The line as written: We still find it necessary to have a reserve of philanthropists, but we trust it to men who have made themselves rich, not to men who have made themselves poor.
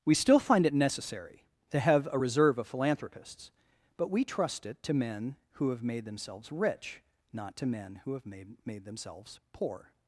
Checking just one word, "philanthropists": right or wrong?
right